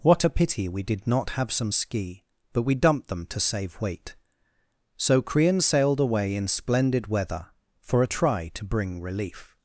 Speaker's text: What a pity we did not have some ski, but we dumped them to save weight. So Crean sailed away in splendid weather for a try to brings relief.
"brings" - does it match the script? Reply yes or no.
no